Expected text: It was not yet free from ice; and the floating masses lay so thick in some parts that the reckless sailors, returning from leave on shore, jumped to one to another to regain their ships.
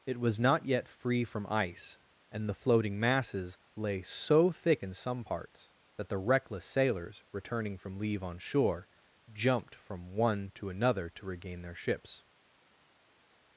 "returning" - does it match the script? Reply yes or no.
yes